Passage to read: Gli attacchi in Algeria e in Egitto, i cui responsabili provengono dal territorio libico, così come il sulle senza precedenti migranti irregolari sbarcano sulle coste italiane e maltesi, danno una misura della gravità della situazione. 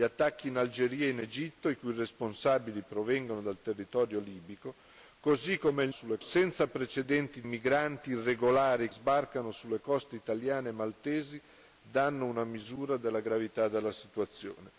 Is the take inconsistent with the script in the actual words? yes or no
no